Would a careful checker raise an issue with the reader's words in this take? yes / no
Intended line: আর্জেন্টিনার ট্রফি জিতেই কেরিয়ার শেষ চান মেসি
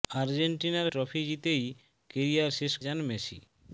no